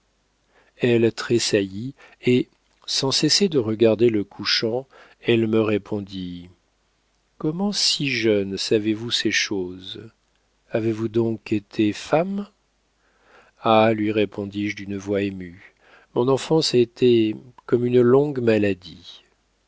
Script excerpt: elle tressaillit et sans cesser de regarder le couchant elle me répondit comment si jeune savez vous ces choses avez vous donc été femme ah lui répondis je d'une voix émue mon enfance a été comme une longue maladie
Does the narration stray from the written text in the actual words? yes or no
no